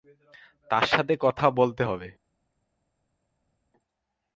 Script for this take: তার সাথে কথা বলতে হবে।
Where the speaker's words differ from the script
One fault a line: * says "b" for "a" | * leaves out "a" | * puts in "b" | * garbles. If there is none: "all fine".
all fine